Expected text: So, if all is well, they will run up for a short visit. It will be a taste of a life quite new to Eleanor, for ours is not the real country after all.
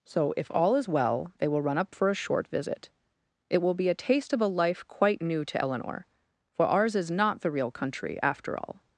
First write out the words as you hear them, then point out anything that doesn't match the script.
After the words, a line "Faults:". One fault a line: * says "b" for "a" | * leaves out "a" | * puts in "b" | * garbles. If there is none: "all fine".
So, if all is well, they will run up for a short visit. It will be a taste of a life quite new to Eleanor, for ours is not the real country after all.
Faults:
all fine